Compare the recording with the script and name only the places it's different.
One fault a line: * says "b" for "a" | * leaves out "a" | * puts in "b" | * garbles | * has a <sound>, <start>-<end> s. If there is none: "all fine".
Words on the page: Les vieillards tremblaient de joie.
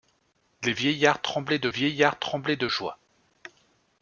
* puts in "vieillards tremblaient de"